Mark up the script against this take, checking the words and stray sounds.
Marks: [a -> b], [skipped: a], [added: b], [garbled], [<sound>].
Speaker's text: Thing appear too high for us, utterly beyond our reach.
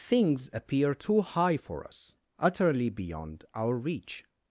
[Thing -> Things] appear too high for us, utterly beyond our reach.